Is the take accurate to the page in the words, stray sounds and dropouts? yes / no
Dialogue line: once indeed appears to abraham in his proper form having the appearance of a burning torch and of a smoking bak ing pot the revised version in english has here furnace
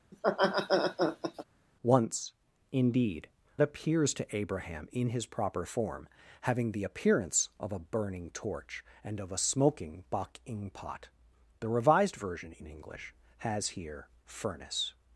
no